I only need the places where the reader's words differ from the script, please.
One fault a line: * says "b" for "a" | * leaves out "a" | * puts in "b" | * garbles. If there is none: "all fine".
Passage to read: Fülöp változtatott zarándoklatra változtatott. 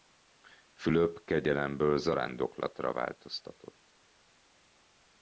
* says "kegyelemből" for "változtatott"